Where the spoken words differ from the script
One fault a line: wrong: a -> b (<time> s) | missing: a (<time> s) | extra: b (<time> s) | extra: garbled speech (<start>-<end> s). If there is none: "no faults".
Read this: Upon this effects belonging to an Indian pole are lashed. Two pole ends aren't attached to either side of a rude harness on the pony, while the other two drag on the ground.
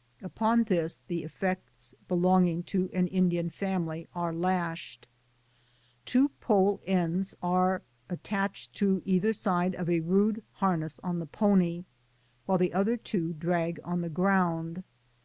extra: the (1.1 s)
wrong: pole -> family (3.5 s)
wrong: aren't -> are (7.4 s)